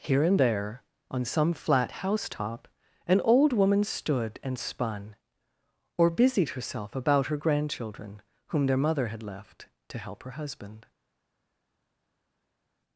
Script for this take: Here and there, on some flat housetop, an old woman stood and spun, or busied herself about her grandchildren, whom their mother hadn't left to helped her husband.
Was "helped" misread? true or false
true